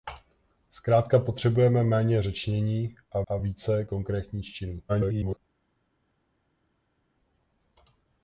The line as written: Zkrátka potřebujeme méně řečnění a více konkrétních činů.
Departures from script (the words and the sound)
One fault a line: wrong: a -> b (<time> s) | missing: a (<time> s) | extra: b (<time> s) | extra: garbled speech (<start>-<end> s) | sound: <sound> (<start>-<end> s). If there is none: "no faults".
extra: a (3.3 s)
extra: garbled speech (4.9-5.4 s)